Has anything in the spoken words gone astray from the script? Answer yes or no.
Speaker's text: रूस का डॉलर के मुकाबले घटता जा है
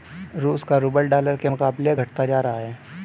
yes